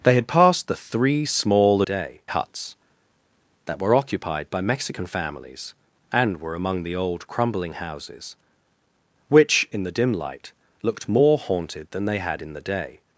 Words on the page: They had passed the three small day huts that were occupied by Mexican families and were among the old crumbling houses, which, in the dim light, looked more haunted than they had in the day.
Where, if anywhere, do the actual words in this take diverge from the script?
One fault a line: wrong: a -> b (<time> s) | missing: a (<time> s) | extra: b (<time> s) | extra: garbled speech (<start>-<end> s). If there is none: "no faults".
no faults